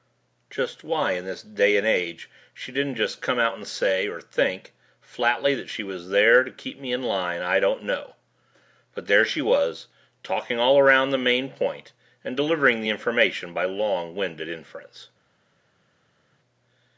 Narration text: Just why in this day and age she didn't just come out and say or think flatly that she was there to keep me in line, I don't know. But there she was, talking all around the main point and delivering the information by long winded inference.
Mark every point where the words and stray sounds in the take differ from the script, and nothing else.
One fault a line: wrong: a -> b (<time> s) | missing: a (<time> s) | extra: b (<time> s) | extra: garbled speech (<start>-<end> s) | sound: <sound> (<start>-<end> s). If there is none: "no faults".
no faults